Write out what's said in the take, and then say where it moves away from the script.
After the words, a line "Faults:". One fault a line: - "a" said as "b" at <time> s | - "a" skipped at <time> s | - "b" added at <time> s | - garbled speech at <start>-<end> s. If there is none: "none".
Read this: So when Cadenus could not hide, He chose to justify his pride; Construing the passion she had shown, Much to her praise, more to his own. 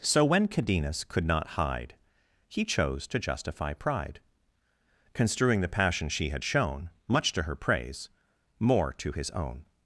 So when Cadenus could not hide, He chose to justify pride; Construing the passion she had shown, Much to her praise, more to his own.
Faults:
- "his" skipped at 3.7 s